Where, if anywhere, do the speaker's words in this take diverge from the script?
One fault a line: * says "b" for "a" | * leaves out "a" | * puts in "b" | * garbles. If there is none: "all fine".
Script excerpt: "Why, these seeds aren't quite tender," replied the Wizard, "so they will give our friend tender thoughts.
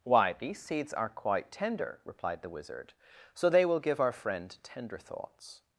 * says "are" for "aren't"